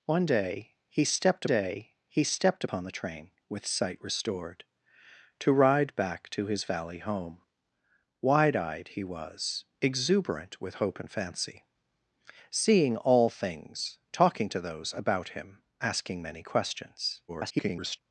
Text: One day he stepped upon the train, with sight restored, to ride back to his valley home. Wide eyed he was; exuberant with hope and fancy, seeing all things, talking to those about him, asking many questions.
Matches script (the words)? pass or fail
fail